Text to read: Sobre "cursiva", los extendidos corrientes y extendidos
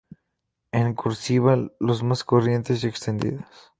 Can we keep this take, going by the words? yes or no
no